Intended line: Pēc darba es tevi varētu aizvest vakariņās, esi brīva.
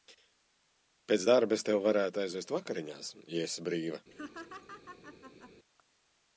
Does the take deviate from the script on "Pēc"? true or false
false